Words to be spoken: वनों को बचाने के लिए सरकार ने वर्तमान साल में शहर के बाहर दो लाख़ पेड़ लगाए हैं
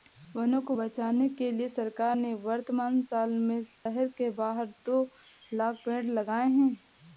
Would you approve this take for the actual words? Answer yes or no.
yes